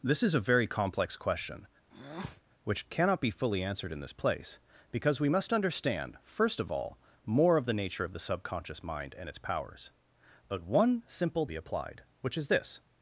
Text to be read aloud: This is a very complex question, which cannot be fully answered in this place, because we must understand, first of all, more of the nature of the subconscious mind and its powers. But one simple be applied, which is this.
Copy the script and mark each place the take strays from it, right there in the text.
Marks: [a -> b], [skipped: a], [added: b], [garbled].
This is a very complex question, which cannot be fully answered in this place, because we must understand, first of all, more of the nature of the subconscious mind and its powers. But one simple be applied, which is this.